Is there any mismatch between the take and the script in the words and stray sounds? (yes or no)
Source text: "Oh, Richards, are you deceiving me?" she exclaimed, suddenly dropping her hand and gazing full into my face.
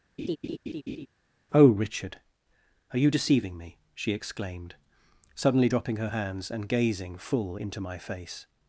yes